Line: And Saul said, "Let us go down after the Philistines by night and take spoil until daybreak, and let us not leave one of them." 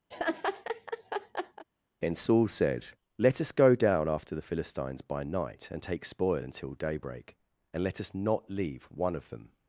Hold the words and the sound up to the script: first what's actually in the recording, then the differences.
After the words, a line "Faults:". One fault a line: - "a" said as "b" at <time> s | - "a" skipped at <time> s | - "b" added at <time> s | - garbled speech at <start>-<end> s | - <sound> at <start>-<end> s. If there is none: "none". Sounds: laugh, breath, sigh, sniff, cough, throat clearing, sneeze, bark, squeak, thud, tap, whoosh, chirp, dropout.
And Saul said, "Let us go down after the Philistines by night and take spoil until daybreak, and let us not leave one of them."
Faults:
- laugh at 0.1-1.7 s